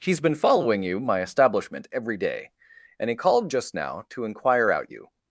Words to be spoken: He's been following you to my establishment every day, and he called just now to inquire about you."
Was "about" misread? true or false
true